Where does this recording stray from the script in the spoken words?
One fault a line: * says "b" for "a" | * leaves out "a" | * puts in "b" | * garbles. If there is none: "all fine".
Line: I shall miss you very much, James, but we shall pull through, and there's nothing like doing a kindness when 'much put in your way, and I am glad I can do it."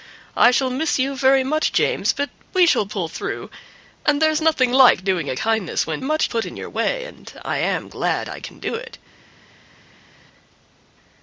all fine